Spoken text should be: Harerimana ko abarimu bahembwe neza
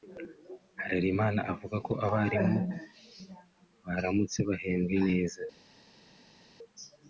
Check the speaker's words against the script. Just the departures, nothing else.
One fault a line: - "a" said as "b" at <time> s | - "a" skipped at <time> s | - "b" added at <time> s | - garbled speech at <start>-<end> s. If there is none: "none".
- "avuga" added at 1.5 s
- "baramutse" added at 3.9 s